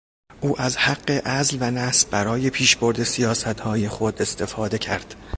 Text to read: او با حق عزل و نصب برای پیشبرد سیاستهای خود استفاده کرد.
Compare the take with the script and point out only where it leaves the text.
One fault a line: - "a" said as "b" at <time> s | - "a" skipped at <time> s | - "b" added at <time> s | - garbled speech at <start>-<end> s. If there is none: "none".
- "با" said as "از" at 0.6 s